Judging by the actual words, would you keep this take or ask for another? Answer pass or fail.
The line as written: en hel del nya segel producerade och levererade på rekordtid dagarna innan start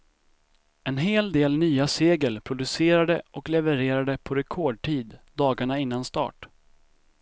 pass